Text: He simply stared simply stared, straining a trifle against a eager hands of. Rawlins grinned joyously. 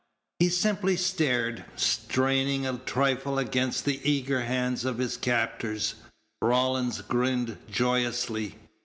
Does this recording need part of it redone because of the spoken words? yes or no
yes